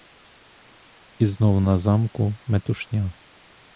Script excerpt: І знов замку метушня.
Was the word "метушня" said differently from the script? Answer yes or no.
no